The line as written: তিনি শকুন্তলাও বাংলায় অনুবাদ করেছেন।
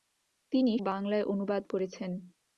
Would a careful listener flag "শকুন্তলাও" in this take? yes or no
yes